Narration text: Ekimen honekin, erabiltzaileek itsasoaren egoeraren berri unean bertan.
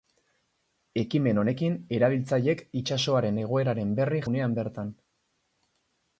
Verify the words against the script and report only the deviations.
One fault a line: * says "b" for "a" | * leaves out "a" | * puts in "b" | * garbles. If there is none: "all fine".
all fine